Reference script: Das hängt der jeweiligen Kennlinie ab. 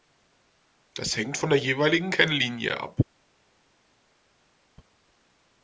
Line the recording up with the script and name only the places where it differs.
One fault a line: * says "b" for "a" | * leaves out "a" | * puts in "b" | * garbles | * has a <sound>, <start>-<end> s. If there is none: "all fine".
* puts in "von"